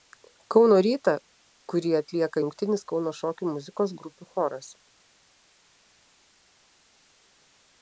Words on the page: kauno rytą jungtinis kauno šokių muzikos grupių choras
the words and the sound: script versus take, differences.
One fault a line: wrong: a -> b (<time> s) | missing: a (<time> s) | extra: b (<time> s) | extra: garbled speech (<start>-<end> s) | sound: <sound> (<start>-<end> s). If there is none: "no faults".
extra: kurį atlieka (1.7 s)